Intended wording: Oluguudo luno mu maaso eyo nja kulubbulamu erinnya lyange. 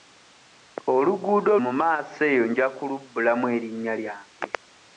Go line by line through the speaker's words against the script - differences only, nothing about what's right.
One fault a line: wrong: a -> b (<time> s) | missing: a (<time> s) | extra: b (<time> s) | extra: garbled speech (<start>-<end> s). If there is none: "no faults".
missing: luno (1.5 s)